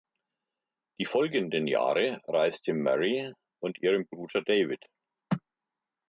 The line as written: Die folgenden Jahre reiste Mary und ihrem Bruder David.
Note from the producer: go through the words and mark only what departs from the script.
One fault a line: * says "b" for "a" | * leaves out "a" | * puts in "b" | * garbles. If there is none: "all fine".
all fine